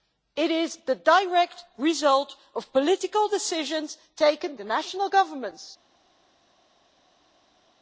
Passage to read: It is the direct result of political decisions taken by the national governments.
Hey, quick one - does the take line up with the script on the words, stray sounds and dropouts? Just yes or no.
no